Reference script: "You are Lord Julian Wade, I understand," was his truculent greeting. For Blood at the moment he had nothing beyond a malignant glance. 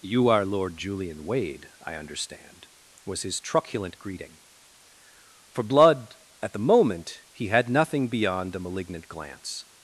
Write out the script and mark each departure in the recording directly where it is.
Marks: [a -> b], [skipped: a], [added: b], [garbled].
"You are Lord Julian Wade, I understand," was his truculent greeting. For Blood at the moment he had nothing beyond a malignant glance.